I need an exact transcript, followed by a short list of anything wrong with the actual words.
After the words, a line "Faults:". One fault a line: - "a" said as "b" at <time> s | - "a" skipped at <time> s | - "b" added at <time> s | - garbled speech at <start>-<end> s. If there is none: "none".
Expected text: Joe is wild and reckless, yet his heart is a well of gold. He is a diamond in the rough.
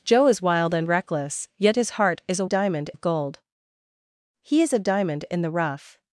Joe is wild and reckless, yet his heart is a diamond of gold. He is a diamond in the rough.
Faults:
- "well" said as "diamond" at 2.4 s